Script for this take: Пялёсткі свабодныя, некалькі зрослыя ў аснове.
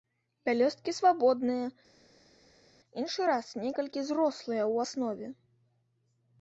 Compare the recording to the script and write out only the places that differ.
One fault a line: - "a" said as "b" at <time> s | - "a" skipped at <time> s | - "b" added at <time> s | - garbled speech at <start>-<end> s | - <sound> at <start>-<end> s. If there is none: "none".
- "іншы раз" added at 3.0 s